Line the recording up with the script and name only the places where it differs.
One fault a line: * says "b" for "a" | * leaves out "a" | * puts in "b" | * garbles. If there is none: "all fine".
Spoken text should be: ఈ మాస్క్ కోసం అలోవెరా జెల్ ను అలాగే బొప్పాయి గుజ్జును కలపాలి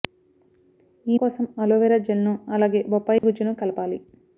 * leaves out "మాస్క్"